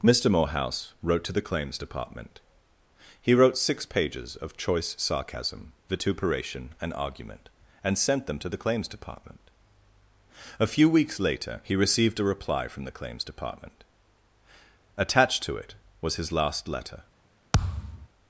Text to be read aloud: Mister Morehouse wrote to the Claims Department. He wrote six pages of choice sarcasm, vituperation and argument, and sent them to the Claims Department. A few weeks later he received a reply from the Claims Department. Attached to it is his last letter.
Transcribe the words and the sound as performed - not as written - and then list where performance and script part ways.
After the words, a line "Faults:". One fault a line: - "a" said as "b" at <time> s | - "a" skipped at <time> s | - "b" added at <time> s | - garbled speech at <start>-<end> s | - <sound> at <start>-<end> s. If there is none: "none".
Mister Morehouse wrote to the Claims Department. He wrote six pages of choice sarcasm, vituperation and argument, and sent them to the Claims Department. A few weeks later he received a reply from the Claims Department. Attached to it was his last letter.
Faults:
- "is" said as "was" at 16.0 s
- thud at 17.5-18.1 s